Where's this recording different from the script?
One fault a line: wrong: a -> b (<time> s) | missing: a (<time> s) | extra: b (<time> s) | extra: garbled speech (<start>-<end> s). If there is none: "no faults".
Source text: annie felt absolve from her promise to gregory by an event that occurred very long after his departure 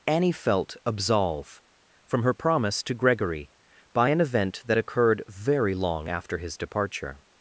no faults